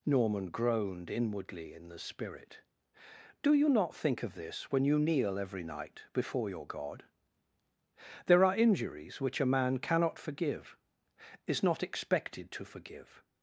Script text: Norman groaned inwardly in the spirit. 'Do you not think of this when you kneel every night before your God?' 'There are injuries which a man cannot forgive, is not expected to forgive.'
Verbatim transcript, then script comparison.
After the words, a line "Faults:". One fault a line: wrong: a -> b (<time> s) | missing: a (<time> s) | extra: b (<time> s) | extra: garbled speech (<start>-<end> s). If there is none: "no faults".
Norman groaned inwardly in the spirit. 'Do you not think of this when you kneel every night before your God?' 'There are injuries which a man cannot forgive, is not expected to forgive.'
Faults:
no faults